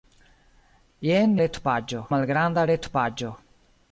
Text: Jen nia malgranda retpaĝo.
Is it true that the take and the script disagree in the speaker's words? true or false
true